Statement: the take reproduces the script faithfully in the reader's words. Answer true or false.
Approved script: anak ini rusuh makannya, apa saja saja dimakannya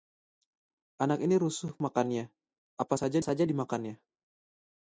true